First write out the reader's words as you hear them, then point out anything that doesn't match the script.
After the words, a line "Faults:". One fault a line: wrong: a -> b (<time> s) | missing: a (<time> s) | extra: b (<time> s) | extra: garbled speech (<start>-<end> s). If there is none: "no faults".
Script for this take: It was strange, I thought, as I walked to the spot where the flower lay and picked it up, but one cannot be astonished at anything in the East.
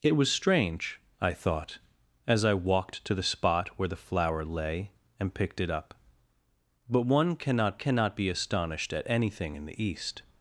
It was strange, I thought, as I walked to the spot where the flower lay and picked it up, but one cannot cannot be astonished at anything in the East.
Faults:
extra: cannot (7.7 s)